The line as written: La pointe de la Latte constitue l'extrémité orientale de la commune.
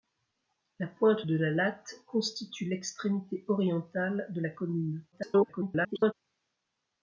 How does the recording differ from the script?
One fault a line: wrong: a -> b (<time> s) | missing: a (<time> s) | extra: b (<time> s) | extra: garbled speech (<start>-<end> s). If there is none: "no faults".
extra: garbled speech (5.1-6.1 s)